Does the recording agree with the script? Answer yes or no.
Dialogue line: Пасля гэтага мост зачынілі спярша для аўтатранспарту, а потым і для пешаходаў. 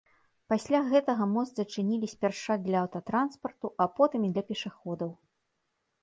yes